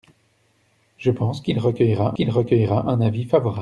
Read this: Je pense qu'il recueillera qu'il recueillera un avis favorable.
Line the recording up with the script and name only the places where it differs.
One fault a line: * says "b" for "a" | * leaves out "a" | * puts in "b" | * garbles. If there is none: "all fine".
all fine